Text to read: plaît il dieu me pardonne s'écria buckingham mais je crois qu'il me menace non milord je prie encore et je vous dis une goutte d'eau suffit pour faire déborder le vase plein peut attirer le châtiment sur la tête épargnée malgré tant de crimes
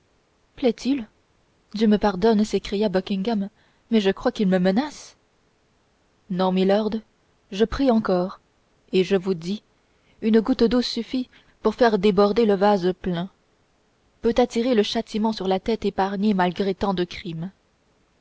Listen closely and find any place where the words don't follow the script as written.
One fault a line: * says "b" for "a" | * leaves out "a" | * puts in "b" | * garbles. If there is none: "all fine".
all fine